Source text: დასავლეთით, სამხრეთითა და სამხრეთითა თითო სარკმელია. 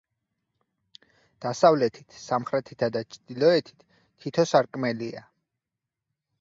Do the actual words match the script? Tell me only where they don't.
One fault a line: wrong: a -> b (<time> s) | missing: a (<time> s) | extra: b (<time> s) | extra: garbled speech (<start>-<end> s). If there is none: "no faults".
wrong: სამხრეთითა -> ჩრდილოეთით (3.2 s)